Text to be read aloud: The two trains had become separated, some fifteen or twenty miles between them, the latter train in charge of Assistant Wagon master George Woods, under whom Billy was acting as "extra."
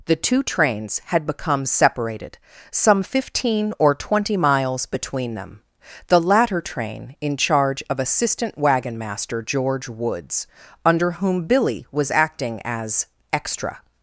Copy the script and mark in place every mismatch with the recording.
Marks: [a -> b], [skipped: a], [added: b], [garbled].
The two trains had become separated, some fifteen or twenty miles between them, the latter train in charge of Assistant Wagon master George Woods, under whom Billy was acting as "extra."